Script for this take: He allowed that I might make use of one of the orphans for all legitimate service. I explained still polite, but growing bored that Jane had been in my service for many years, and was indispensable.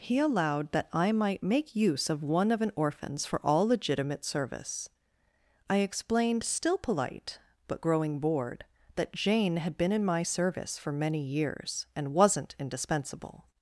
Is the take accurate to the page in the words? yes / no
no